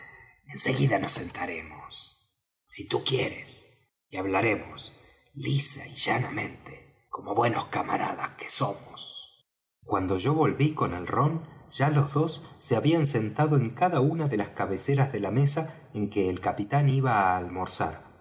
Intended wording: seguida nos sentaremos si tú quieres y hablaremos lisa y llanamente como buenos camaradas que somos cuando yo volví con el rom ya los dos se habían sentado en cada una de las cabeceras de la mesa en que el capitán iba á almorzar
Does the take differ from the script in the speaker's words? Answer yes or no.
no